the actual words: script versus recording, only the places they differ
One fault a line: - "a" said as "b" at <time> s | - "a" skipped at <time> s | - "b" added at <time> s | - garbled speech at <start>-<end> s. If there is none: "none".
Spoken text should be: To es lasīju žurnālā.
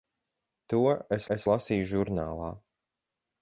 - "es" added at 1.4 s